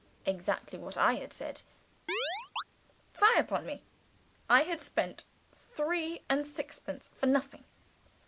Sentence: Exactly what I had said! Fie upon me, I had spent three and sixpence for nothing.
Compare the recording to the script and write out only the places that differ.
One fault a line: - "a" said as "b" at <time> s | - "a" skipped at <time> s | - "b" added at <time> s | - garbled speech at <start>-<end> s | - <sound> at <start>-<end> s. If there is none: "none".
- chirp at 2.1-2.6 s